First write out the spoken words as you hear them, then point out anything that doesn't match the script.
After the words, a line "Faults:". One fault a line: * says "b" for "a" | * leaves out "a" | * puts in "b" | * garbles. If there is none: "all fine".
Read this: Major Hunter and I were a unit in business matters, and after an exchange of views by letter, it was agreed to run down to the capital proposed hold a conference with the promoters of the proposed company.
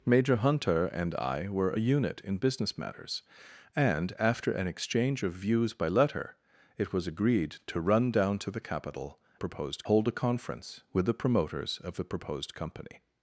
Major Hunter and I were a unit in business matters, and after an exchange of views by letter, it was agreed to run down to the capital proposed hold a conference with the promoters of the proposed company.
Faults:
all fine